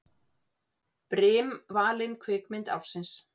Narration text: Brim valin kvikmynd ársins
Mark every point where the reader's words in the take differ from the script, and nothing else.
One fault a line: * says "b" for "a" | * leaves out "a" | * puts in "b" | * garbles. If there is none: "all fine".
all fine